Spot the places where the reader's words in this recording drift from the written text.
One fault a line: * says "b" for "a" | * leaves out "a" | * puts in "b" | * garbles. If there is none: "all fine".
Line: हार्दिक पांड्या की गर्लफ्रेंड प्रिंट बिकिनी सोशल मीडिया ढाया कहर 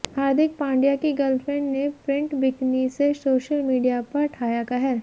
* puts in "ने"
* puts in "से"
* puts in "पर"